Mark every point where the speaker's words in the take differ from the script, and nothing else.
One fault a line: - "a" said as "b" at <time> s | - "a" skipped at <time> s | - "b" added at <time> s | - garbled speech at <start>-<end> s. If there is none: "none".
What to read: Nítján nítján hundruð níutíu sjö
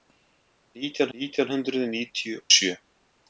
none